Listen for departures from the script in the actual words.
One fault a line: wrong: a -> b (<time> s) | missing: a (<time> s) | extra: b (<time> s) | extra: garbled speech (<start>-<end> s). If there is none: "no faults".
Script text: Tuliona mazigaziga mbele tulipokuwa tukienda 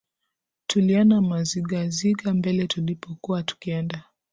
no faults